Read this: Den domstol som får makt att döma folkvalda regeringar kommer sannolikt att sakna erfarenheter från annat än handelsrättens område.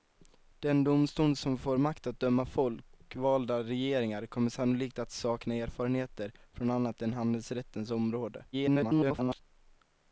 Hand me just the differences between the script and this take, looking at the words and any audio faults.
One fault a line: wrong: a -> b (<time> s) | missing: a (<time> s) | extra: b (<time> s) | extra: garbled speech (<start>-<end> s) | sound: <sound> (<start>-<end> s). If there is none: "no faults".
extra: garbled speech (8.5-9.4 s)